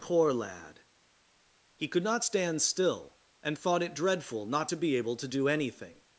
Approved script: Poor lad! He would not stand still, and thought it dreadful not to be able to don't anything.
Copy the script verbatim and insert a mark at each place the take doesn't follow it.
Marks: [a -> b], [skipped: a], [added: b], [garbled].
Poor lad! He [would -> could] not stand still, and thought it dreadful not to be able to [don't -> do] anything.